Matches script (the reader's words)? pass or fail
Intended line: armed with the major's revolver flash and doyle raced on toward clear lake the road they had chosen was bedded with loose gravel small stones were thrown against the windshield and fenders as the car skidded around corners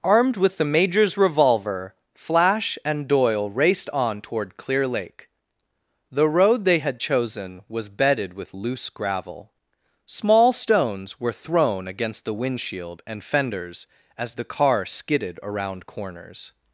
pass